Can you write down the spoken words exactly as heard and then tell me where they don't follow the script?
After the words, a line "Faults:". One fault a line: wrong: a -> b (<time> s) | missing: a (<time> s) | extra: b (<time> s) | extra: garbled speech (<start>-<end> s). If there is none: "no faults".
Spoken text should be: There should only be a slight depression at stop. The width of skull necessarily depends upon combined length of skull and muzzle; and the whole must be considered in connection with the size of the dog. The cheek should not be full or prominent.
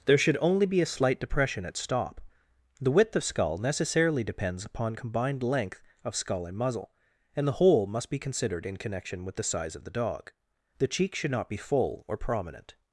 There should only be a slight depression at stop. The width of skull necessarily depends upon combined length of skull and muzzle; and the whole must be considered in connection with the size of the dog. The cheek should not be full or prominent.
Faults:
no faults